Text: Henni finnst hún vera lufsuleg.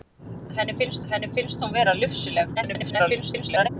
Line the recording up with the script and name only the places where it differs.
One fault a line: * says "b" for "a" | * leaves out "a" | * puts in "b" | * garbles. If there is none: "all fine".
* puts in "henni finnst"
* garbles